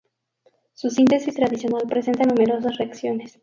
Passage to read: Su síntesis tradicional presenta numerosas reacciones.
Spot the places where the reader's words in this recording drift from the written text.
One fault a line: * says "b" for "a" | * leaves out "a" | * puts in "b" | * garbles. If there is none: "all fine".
all fine